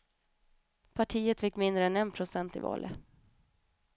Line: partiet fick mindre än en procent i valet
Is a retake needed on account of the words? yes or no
no